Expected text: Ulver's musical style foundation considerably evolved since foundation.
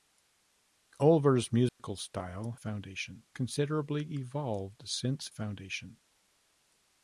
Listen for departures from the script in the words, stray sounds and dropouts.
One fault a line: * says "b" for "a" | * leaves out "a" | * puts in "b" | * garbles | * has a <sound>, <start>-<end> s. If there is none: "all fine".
* has a dropout, 1.7-1.8 s